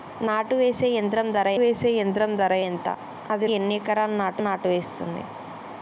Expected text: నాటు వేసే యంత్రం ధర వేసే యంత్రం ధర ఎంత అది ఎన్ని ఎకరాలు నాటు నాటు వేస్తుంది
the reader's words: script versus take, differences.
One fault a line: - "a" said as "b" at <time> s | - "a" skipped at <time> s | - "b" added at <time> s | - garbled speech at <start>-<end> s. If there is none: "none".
none